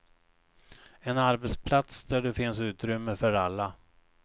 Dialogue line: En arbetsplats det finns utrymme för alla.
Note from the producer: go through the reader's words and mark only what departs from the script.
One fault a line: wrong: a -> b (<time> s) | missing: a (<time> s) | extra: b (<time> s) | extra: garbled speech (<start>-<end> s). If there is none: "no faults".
extra: där (2.0 s)